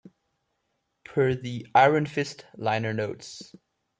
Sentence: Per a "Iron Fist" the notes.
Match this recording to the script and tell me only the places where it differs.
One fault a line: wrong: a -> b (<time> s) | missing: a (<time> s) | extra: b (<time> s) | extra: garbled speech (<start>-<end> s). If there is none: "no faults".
wrong: a -> the (1.4 s)
wrong: the -> liner (2.5 s)